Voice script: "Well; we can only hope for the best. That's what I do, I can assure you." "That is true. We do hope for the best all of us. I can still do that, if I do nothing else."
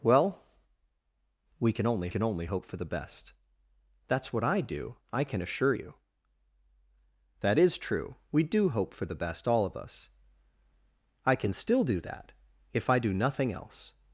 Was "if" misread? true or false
false